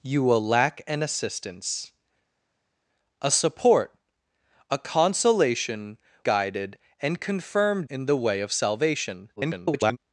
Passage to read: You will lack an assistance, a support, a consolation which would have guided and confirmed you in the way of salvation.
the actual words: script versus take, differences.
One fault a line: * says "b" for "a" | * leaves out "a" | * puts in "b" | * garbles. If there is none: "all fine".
* leaves out "which would have"
* leaves out "you"
* garbles